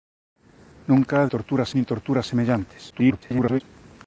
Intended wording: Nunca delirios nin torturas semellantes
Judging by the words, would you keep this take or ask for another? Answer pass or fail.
fail